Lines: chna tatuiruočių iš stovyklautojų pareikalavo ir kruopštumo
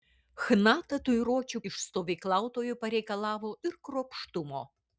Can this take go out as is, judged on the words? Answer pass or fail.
pass